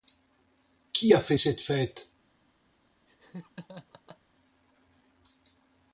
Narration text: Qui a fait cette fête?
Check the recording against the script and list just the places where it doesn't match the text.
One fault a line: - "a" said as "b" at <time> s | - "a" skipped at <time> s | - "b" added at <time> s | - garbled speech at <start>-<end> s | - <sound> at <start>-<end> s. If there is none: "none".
- laugh at 3.1-4.2 s